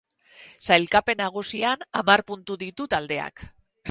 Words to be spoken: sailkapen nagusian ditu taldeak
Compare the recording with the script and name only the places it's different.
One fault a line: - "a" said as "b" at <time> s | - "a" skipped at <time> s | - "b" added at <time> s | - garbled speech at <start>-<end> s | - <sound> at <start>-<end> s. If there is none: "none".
- "hamar puntu" added at 2.0 s